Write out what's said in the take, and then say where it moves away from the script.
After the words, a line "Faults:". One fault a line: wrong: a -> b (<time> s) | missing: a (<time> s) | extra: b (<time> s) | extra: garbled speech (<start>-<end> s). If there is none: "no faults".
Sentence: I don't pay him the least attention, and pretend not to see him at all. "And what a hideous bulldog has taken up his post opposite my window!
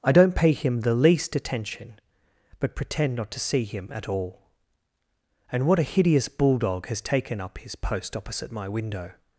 I don't pay him the least attention, but pretend not to see him at all. "And what a hideous bulldog has taken up his post opposite my window!
Faults:
wrong: and -> but (2.6 s)